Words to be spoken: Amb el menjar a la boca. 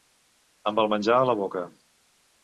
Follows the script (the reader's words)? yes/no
yes